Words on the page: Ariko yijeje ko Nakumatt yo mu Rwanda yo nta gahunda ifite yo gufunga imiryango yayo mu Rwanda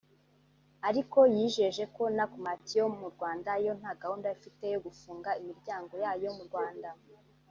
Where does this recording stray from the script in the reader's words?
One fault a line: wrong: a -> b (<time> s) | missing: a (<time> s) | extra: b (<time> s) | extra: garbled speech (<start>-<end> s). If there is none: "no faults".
no faults